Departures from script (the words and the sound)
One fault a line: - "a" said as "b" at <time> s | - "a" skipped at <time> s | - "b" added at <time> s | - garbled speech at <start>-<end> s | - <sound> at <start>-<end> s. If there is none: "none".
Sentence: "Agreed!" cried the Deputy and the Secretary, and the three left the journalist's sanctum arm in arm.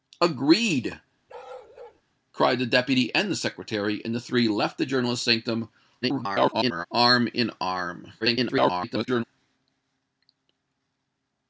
- bark at 1.3-2.0 s
- garbled speech at 6.0-6.9 s
- garbled speech at 8.2-9.2 s